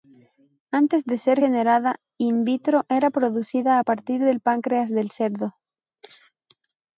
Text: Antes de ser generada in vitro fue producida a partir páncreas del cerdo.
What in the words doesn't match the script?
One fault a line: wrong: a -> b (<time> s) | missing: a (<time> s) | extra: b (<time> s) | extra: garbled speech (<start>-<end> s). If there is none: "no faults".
wrong: fue -> era (2.9 s)
extra: del (4.2 s)